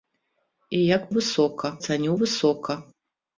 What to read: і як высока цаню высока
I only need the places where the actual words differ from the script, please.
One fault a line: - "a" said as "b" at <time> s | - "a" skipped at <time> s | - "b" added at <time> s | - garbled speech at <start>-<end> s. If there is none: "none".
none